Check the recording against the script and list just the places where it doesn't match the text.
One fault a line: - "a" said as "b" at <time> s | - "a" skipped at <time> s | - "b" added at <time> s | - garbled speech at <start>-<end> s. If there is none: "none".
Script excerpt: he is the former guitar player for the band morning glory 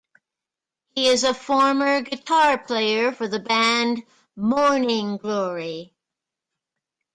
- "the" said as "a" at 1.2 s